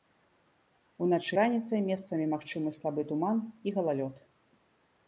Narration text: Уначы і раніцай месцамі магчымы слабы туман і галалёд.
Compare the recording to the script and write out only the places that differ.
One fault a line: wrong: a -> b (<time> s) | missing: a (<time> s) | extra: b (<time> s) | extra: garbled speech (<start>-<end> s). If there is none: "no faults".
missing: і (1.4 s)